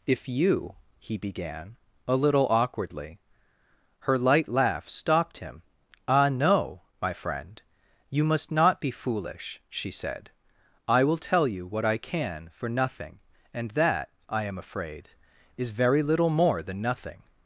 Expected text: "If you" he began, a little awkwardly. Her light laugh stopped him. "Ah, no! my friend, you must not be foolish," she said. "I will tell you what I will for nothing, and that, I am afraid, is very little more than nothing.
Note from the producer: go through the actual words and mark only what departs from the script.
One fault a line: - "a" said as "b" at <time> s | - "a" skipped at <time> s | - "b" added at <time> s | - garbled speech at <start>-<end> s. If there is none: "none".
- "will" said as "can" at 12.0 s